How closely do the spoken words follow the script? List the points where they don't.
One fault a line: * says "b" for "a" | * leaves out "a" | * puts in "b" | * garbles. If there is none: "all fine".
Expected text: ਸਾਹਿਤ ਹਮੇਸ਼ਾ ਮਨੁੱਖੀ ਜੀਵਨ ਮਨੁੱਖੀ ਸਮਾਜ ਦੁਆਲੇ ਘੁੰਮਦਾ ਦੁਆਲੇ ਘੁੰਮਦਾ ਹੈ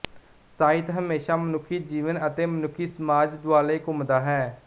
* puts in "ਅਤੇ"
* leaves out "ਦੁਆਲੇ ਘੁੰਮਦਾ"